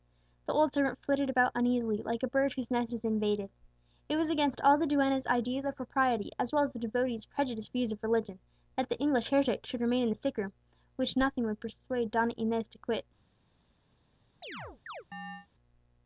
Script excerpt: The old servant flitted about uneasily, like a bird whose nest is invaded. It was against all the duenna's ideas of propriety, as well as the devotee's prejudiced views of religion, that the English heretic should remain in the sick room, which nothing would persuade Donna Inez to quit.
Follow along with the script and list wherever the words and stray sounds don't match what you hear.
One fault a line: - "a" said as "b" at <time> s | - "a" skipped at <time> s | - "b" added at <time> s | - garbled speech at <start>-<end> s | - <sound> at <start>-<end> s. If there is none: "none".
- chirp at 14.4-15.5 s